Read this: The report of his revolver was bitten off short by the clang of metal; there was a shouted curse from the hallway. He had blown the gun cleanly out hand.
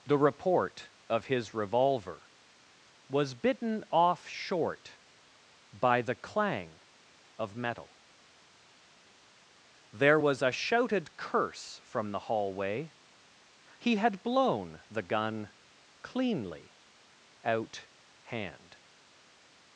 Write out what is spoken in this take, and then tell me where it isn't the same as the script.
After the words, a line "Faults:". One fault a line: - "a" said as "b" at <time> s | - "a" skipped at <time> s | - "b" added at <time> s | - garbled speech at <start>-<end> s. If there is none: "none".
The report of his revolver was bitten off short by the clang of metal; there was a shouted curse from the hallway. He had blown the gun cleanly out hand.
Faults:
none